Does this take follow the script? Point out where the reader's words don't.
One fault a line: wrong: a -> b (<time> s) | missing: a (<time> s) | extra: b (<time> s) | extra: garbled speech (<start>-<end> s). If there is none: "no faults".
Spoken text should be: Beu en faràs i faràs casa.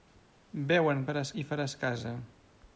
no faults